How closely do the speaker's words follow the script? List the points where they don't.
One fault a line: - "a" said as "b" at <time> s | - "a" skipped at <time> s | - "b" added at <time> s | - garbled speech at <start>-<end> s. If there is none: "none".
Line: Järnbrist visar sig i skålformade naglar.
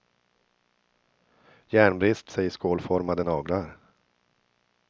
- "visar" skipped at 2.3 s